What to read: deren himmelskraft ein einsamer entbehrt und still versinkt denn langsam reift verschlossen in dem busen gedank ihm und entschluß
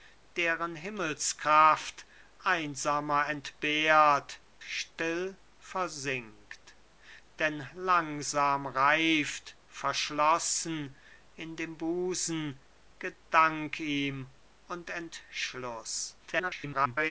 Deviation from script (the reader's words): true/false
true